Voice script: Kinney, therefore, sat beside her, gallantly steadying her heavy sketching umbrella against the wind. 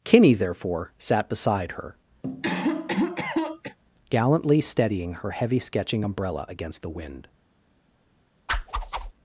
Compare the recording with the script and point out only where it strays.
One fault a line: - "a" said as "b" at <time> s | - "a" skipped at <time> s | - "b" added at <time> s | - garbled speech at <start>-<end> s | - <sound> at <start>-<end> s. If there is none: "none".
- cough at 2.2-3.8 s
- whoosh at 8.5-9.1 s